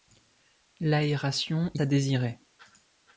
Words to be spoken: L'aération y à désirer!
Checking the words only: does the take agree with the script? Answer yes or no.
yes